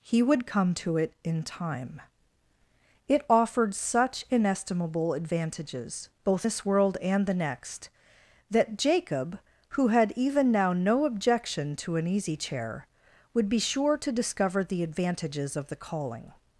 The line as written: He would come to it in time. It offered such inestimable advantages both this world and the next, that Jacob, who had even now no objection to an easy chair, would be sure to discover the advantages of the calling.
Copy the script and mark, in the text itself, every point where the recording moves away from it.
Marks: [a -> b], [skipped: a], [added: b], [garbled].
He would come to it in time. It offered such inestimable advantages both this world and the next, that Jacob, who had even now no objection to an easy chair, would be sure to discover the advantages of the calling.